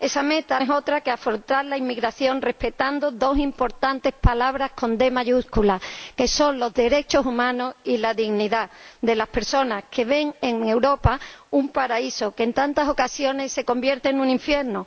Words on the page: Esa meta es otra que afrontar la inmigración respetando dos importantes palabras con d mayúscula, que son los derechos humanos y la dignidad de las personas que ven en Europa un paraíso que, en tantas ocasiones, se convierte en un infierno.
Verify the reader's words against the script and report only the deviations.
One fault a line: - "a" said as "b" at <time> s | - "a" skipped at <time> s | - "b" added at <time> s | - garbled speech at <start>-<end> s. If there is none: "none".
none